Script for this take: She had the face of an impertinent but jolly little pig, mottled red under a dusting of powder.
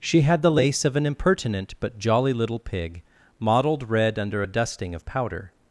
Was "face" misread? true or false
true